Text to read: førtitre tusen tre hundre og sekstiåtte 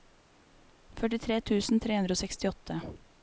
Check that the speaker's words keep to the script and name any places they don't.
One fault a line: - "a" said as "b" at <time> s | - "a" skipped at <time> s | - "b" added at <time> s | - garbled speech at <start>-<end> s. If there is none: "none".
none